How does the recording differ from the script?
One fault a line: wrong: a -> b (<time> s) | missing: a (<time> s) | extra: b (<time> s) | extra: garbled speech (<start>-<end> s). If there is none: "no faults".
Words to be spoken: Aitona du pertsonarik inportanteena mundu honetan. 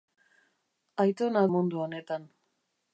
missing: du pertsonarik inportanteena (1.4 s)